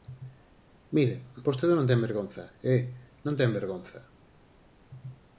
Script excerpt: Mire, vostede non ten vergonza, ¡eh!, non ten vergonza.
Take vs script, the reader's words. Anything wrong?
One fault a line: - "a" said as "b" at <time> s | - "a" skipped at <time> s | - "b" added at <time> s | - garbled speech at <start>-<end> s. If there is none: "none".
none